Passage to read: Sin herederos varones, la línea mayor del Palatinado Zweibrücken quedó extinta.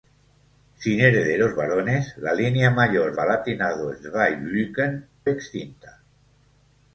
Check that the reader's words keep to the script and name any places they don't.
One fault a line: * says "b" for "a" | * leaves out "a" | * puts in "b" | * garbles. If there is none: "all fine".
* leaves out "del"
* leaves out "quedó"